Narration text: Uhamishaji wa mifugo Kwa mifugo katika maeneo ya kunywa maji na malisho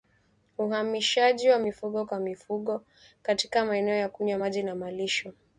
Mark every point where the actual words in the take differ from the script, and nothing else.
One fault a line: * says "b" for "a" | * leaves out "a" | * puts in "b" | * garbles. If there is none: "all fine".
all fine